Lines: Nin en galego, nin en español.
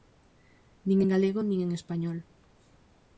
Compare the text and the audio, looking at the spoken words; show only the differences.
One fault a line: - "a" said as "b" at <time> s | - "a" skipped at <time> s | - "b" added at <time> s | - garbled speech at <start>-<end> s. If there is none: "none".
none